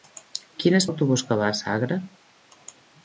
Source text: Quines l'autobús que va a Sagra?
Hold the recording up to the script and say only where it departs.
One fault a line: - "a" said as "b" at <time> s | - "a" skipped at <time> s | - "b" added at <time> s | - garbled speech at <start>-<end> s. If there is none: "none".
none